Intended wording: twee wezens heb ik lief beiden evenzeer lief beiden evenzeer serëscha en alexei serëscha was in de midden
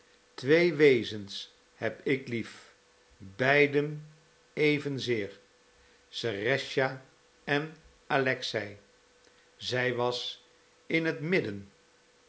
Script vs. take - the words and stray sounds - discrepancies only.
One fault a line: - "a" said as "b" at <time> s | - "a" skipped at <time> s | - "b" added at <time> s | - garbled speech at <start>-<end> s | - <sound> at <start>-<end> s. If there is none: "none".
- "lief beiden evenzeer" skipped at 5.4 s
- "serëscha" said as "zij" at 9.5 s
- "de" said as "het" at 11.0 s